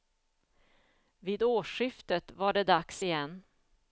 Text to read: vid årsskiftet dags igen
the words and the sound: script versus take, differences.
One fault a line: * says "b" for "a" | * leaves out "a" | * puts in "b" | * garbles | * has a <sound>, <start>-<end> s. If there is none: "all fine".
* puts in "var det"